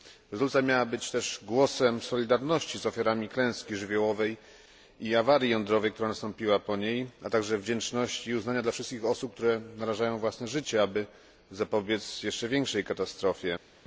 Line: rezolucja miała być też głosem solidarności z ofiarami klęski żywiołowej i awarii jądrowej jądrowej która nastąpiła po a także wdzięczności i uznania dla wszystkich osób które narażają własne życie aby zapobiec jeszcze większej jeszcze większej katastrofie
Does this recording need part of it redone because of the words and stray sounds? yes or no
yes